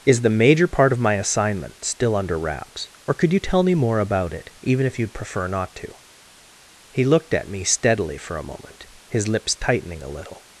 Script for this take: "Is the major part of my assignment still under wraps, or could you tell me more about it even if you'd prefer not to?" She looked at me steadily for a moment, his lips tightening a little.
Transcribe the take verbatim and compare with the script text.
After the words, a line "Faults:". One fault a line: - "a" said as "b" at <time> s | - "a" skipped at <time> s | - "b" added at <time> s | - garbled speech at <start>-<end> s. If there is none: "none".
"Is the major part of my assignment still under wraps, or could you tell me more about it even if you'd prefer not to?" He looked at me steadily for a moment, his lips tightening a little.
Faults:
- "She" said as "He" at 6.9 s